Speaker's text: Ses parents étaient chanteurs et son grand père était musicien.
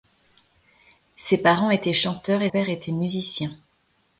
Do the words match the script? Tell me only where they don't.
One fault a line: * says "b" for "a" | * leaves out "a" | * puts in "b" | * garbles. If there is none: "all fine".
* leaves out "son grand"